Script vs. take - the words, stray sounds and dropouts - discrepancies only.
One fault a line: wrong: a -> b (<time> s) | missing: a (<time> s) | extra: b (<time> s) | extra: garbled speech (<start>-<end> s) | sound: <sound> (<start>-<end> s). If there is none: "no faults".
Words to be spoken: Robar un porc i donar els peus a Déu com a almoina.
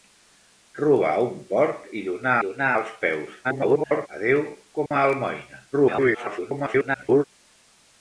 extra: donar (2.4 s)
extra: garbled speech (3.4-4.1 s)
sound: dropout (4.9-4.9 s)
extra: garbled speech (5.7-7.2 s)